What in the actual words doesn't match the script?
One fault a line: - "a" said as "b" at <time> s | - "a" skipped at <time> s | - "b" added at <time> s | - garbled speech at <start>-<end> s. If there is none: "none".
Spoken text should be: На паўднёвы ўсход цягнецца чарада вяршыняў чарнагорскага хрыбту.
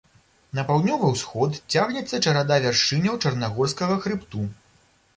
none